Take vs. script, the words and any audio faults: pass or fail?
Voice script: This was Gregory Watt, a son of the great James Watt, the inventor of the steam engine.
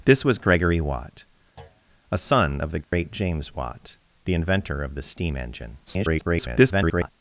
fail